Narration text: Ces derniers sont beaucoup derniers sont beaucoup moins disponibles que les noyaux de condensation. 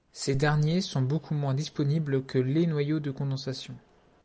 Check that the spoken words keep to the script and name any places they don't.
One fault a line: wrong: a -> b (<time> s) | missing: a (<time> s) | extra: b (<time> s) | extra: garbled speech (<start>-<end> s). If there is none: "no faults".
missing: derniers sont beaucoup (1.4 s)